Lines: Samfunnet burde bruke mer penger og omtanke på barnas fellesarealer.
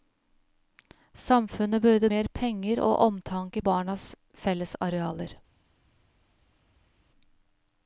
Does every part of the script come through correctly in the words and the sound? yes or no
no